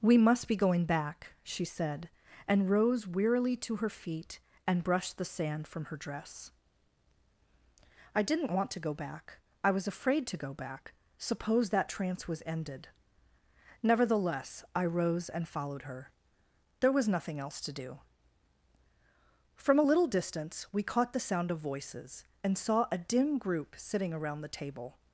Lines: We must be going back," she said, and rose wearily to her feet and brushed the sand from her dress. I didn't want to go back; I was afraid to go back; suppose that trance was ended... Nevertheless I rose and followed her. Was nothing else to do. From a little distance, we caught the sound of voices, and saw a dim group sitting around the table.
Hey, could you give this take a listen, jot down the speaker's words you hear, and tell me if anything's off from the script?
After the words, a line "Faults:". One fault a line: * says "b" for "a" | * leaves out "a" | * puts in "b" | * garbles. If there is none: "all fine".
We must be going back," she said, and rose wearily to her feet and brushed the sand from her dress. I didn't want to go back; I was afraid to go back; suppose that trance was ended... Nevertheless I rose and followed her. There was nothing else to do. From a little distance, we caught the sound of voices, and saw a dim group sitting around the table.
Faults:
* puts in "There"